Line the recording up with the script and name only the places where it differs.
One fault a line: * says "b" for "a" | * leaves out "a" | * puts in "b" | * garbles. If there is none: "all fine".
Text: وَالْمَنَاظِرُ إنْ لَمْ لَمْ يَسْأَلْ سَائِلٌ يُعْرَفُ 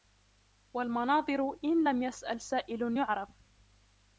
* leaves out "لَمْ"